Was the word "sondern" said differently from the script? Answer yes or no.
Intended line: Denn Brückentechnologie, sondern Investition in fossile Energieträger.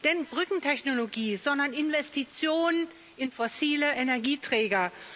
no